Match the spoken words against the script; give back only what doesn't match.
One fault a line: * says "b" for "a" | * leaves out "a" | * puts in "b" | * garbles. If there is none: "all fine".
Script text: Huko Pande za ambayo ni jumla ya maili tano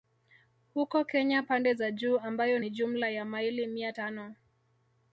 * puts in "Kenya"
* puts in "juu"
* puts in "mia"